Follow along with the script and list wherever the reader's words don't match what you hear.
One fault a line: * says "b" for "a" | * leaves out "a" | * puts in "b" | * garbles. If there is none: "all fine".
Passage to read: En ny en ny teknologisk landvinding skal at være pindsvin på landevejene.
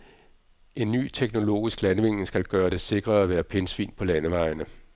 * leaves out "en ny"
* puts in "gøre det sikrere"